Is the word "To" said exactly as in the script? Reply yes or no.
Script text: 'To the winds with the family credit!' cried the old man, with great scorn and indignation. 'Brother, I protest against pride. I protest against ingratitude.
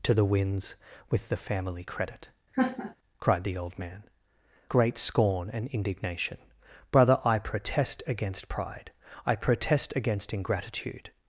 yes